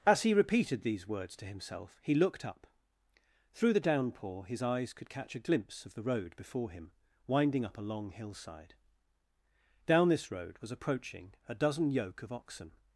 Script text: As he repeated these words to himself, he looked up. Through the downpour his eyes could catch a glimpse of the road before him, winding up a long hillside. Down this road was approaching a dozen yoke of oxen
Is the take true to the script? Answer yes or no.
yes